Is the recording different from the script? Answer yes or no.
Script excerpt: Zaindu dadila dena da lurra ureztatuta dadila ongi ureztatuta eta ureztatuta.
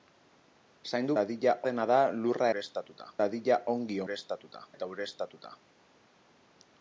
no